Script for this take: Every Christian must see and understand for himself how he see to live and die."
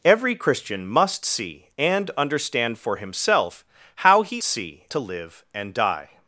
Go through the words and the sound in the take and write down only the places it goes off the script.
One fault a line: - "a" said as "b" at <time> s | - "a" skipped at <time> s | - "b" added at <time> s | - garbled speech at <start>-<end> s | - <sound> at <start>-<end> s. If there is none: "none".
none